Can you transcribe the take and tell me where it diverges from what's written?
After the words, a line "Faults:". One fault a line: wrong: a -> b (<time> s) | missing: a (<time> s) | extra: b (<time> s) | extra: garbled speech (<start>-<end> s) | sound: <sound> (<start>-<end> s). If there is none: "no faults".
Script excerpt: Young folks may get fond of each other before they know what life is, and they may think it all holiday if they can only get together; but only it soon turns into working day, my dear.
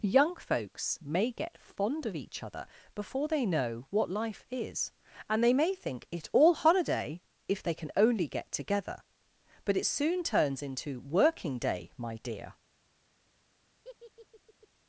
Young folks may get fond of each other before they know what life is, and they may think it all holiday if they can only get together; but it soon turns into working day, my dear.
Faults:
missing: only (9.8 s)
sound: laugh (13.8-14.7 s)